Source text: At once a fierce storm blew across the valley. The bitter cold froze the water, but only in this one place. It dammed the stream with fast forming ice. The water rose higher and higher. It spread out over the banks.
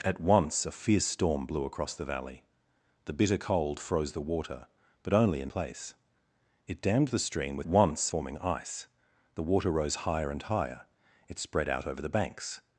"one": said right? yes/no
no